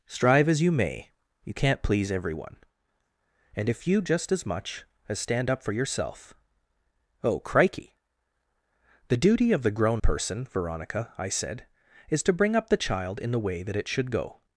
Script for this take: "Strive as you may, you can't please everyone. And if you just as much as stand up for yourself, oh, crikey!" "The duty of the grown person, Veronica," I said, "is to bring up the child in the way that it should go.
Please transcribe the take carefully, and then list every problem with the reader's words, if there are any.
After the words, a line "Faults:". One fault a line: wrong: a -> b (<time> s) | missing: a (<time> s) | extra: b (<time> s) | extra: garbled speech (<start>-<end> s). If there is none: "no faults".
"Strive as you may, you can't please everyone. And if you just as much as stand up for yourself, oh, crikey!" "The duty of the grown person, Veronica," I said, "is to bring up the child in the way that it should go.
Faults:
no faults